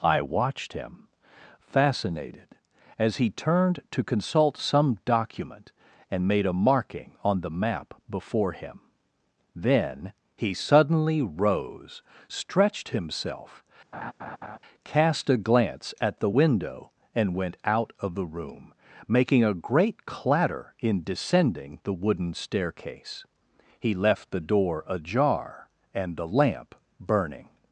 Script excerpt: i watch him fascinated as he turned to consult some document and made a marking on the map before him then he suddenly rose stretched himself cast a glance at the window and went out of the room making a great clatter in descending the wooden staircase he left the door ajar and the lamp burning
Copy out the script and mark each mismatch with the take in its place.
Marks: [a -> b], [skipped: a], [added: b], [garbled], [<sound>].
i [watch -> watched] him fascinated as he turned to consult some document and made a marking on the map before him then he suddenly rose stretched himself [laugh] cast a glance at the window and went out of the room making a great clatter in descending the wooden staircase he left the door ajar and the lamp burning